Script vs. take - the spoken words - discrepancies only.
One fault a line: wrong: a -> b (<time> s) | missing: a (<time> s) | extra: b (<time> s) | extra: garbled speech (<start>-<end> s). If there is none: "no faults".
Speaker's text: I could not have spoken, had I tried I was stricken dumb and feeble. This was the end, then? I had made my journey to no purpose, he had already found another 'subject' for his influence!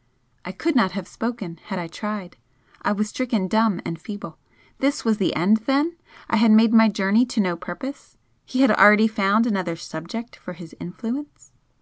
no faults